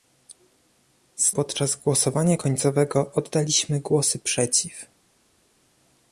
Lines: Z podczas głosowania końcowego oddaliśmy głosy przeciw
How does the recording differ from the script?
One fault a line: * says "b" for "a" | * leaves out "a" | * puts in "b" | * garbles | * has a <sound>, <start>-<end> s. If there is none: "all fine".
all fine